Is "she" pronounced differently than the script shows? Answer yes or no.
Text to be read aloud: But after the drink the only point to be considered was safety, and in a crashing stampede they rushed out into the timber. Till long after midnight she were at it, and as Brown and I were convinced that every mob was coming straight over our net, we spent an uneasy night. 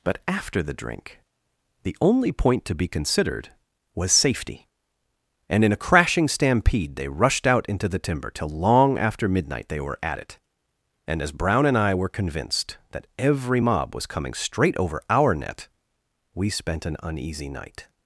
yes